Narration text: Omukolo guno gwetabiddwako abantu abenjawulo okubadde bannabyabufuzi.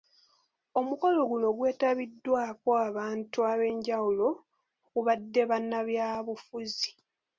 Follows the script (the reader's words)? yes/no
yes